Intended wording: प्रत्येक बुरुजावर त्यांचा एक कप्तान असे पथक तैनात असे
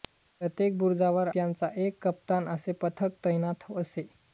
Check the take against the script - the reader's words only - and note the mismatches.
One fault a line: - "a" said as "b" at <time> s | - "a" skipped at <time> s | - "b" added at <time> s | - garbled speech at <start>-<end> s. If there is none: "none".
none